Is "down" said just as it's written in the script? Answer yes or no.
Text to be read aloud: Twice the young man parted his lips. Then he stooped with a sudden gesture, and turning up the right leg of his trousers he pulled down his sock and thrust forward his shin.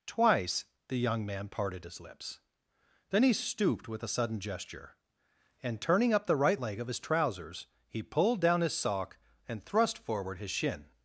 yes